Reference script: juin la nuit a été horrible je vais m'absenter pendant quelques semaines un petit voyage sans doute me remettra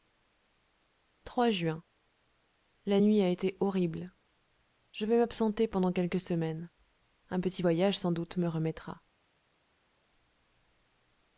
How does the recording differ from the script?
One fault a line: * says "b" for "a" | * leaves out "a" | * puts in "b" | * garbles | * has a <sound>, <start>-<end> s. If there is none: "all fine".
all fine